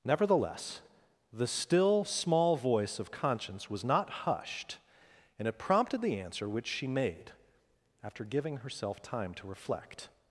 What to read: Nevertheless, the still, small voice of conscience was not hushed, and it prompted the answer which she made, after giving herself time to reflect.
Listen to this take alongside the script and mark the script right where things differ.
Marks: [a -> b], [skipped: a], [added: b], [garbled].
Nevertheless, the still, small voice of conscience was not hushed, and it prompted the answer which she made, after giving herself time to reflect.